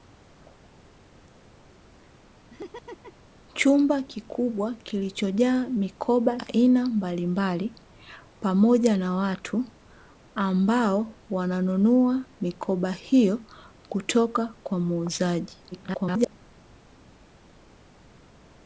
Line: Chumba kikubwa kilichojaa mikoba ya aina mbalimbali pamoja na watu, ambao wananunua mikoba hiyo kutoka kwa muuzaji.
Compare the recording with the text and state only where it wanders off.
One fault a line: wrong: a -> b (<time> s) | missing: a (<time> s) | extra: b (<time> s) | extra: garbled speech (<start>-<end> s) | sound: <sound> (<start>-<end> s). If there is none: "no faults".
sound: laugh (2.5-3.3 s)
missing: ya (6.4 s)
extra: garbled speech (15.7-16.4 s)